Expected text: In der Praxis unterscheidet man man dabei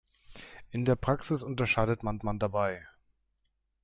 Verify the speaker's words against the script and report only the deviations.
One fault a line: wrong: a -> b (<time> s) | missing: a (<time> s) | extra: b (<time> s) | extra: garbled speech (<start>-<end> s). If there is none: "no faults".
no faults